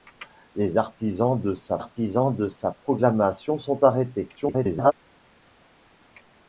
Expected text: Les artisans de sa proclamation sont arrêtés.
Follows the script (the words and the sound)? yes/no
no